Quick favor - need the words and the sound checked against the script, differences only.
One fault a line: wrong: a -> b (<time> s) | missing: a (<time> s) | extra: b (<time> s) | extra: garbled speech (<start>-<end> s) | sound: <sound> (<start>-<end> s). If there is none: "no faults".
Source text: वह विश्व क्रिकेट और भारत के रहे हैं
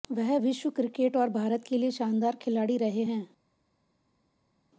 extra: लिए शानदार खिलाड़ी (1.8 s)